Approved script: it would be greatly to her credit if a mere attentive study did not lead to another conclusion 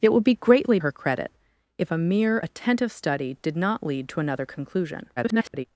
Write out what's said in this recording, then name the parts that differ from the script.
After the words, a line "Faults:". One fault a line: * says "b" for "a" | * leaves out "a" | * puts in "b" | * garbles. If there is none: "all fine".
it would be greatly her credit if a mere attentive study did not lead to another conclusion [garbled]
Faults:
* leaves out "to"
* garbles